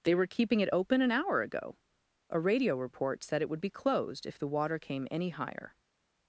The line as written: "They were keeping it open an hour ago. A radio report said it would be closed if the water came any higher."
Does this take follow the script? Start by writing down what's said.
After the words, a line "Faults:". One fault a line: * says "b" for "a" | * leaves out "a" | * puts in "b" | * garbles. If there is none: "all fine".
"They were keeping it open an hour ago. A radio report said it would be closed if the water came any higher."
Faults:
all fine